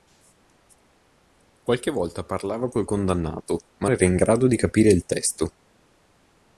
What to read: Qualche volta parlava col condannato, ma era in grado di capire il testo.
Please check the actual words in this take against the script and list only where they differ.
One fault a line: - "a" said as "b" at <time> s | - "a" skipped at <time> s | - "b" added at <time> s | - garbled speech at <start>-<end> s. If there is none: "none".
none